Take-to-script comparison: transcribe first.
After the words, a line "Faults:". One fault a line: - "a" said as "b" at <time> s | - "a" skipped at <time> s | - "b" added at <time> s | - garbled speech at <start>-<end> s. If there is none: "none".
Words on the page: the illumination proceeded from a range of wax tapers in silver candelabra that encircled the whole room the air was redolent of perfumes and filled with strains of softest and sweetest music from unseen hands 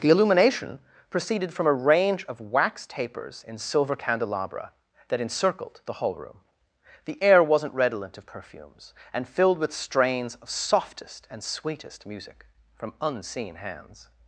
the illumination proceeded from a range of wax tapers in silver candelabra that encircled the hall room the air wasn't redolent of perfumes and filled with strains of softest and sweetest music from unseen hands
Faults:
- "whole" said as "hall" at 5.9 s
- "was" said as "wasn't" at 7.4 s